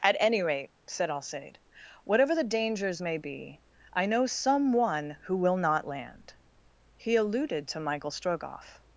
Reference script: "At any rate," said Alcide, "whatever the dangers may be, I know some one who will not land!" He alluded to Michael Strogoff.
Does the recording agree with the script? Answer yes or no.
yes